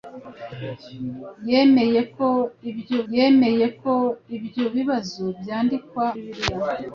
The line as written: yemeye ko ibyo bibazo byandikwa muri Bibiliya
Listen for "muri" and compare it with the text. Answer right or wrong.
wrong